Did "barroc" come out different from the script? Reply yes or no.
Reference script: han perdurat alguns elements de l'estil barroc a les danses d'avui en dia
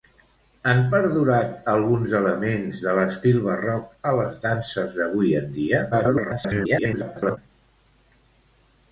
no